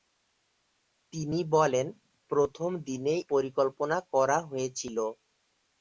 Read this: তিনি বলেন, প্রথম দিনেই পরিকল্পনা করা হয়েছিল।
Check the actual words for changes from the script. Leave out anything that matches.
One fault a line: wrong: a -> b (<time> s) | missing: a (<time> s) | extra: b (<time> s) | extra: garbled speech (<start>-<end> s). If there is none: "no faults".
no faults